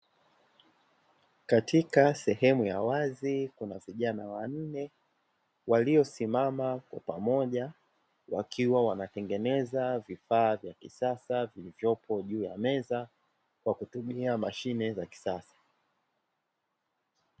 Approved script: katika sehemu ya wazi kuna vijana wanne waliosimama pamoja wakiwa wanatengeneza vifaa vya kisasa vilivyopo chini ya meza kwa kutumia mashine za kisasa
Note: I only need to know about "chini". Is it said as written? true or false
false